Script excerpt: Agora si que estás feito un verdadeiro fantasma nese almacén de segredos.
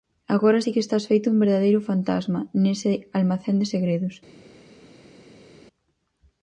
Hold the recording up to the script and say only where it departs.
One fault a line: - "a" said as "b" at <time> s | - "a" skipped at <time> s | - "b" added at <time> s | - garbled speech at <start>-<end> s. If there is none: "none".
none